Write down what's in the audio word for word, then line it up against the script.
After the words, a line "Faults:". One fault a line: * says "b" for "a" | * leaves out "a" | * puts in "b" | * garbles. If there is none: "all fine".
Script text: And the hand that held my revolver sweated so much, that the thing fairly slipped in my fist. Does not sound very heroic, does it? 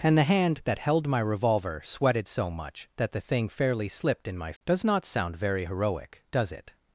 And the hand that held my revolver sweated so much, that the thing fairly slipped in my. Does not sound very heroic, does it?
Faults:
* leaves out "fist"